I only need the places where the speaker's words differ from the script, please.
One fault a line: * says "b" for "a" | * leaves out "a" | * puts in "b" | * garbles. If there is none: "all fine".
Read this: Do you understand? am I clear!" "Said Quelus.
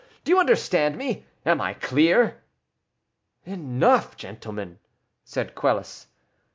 * puts in "me"
* puts in "Enough gentlemen"